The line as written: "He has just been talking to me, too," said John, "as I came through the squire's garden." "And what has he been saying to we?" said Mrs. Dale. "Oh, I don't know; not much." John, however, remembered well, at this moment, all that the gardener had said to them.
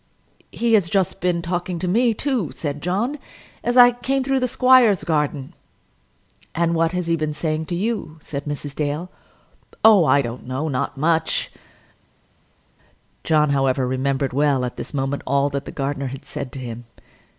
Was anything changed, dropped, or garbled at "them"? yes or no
yes